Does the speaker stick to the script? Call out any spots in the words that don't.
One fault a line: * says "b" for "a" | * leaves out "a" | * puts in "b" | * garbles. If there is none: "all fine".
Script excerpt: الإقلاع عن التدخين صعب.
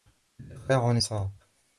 * leaves out "التدخين"